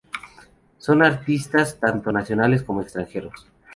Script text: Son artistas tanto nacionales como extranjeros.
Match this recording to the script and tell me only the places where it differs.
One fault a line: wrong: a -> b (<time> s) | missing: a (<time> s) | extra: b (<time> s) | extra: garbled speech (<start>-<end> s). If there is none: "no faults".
no faults